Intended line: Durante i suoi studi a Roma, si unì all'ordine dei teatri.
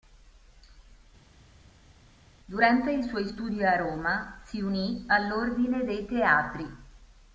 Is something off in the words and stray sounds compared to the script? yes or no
no